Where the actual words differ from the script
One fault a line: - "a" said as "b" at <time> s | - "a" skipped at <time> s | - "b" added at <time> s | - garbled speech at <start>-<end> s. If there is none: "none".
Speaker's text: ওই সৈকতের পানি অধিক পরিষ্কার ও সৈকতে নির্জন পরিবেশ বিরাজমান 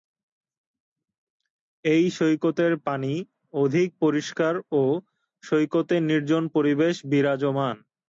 - "ওই" said as "এই" at 1.9 s